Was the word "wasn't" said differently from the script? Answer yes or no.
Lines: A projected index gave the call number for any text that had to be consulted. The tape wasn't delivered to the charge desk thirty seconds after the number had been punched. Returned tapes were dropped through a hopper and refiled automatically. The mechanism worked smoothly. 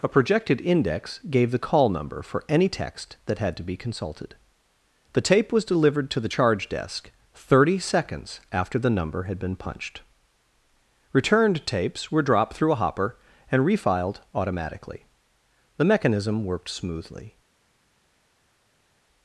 yes